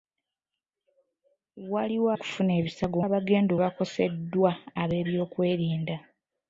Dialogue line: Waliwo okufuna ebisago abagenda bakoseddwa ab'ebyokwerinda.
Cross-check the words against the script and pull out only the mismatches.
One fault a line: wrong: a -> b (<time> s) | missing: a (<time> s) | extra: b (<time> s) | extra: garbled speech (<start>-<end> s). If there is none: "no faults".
no faults